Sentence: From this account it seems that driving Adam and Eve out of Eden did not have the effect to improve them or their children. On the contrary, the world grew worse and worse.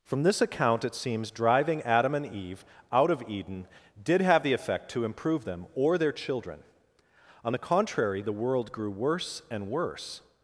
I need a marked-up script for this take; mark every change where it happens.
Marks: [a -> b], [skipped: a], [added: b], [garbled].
From this account it seems [skipped: that] driving Adam and Eve out of Eden did [skipped: not] have the effect to improve them or their children. On the contrary, the world grew worse and worse.